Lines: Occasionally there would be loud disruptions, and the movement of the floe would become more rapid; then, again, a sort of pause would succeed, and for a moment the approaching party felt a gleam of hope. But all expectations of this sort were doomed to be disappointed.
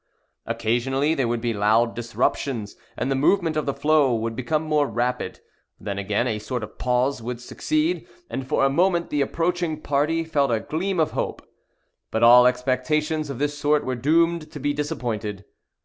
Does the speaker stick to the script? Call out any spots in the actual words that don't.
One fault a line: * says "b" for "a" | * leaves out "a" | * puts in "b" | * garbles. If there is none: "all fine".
all fine